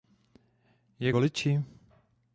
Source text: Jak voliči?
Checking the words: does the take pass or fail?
pass